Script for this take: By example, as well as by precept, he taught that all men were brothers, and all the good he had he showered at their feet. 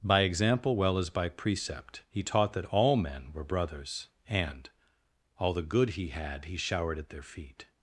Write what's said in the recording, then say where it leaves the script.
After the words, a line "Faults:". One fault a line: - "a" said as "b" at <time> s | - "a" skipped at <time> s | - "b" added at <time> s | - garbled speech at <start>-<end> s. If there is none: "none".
By example, well as by precept, he taught that all men were brothers, and all the good he had he showered at their feet.
Faults:
- "as" skipped at 0.8 s